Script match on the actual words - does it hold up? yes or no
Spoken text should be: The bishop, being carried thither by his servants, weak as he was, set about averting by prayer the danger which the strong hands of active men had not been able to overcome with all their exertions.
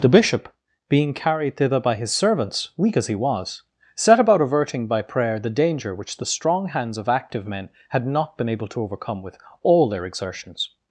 yes